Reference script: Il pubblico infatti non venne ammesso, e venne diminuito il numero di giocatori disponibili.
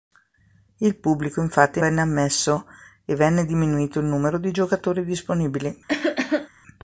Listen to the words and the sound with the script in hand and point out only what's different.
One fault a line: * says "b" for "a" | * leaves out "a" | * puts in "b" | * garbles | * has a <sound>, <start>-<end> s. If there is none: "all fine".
* leaves out "non"
* has a cough, 5.9-6.5 s